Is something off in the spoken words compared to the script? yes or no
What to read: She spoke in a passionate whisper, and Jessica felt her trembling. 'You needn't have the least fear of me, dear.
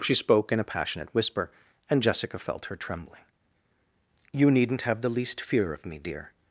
no